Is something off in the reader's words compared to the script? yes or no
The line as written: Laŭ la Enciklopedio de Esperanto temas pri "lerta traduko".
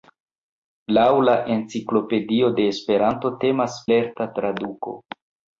yes